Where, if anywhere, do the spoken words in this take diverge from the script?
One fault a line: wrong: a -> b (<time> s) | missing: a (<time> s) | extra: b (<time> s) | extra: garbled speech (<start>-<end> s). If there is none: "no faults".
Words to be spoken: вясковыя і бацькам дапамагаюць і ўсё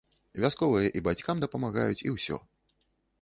no faults